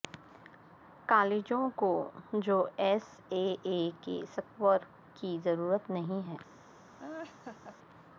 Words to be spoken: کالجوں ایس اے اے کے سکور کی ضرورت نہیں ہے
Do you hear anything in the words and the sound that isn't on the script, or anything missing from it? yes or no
yes